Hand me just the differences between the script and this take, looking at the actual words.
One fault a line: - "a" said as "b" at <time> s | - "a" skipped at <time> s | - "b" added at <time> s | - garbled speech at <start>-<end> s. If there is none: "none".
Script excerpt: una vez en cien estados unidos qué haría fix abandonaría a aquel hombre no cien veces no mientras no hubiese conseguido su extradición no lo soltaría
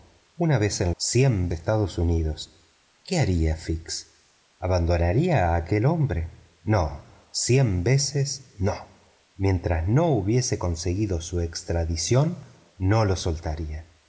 none